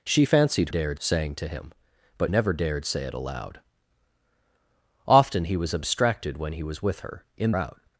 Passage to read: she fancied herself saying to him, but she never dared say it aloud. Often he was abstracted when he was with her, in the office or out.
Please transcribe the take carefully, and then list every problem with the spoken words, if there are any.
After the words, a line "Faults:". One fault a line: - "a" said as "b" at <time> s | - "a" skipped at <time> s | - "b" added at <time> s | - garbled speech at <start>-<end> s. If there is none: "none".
she fancied dared saying to him, but never dared say it aloud. Often he was abstracted when he was with her, in out.
Faults:
- "herself" said as "dared" at 0.7 s
- "she" skipped at 2.3 s
- "the office or" skipped at 7.5 s